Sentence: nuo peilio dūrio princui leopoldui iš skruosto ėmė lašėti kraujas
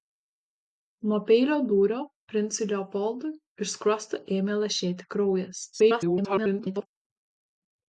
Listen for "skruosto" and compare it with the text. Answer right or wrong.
right